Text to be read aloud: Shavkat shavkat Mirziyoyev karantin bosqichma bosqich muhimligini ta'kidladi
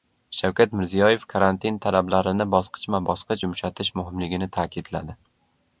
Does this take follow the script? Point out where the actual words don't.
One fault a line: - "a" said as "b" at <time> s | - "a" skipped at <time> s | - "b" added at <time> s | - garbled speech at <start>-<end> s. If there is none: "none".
- "shavkat" skipped at 0.7 s
- "talablarini" added at 1.9 s
- "yumshatish" added at 3.4 s